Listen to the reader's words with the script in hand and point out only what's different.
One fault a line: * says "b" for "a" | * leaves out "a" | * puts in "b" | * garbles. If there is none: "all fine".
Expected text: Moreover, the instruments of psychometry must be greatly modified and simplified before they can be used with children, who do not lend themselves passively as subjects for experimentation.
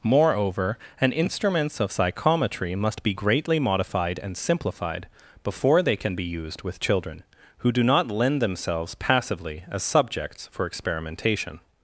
* says "an" for "the"